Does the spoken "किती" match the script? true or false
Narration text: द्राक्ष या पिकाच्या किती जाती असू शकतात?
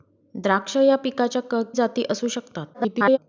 false